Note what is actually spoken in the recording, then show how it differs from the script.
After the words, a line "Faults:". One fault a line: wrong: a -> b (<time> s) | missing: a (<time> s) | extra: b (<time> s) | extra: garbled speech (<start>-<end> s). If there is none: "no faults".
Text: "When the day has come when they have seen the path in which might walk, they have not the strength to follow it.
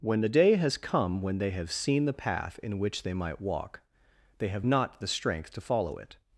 "When the day has come when they have seen the path in which they might walk, they have not the strength to follow it.
Faults:
extra: they (3.0 s)